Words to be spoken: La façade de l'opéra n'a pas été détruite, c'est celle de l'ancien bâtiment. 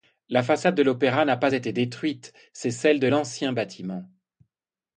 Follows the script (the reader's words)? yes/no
yes